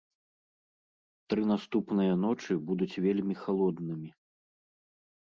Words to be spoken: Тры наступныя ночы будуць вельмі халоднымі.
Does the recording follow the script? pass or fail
pass